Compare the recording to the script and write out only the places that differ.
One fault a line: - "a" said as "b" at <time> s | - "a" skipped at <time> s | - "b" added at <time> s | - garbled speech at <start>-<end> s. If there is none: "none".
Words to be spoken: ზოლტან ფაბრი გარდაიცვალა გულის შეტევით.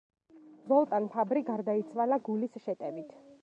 none